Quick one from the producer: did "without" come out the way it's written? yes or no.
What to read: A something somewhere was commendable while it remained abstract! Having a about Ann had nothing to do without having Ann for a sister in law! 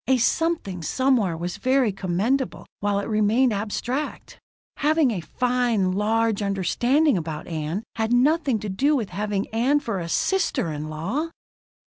no